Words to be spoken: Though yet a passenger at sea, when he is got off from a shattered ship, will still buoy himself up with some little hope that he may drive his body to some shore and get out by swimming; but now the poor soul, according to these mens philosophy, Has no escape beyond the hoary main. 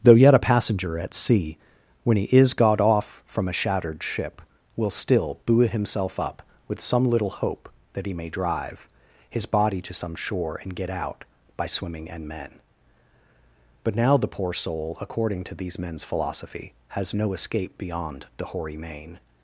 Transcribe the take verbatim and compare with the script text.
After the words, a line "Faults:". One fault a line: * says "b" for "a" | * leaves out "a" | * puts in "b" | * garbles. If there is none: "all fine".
Though yet a passenger at sea, when he is got off from a shattered ship, will still buoy himself up with some little hope that he may drive his body to some shore and get out by swimming; and men but now the poor soul, according to these mens philosophy, Has no escape beyond the hoary main.
Faults:
* puts in "and men"